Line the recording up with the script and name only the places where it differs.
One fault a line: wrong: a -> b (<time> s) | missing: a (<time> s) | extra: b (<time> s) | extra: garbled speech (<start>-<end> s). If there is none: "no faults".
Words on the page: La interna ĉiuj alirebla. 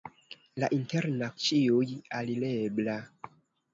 no faults